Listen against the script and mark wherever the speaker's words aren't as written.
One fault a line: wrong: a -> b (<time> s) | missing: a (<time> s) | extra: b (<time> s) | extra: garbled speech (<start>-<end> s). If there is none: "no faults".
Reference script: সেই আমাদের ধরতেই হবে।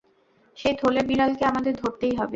extra: থলের বিড়ালকে (0.8 s)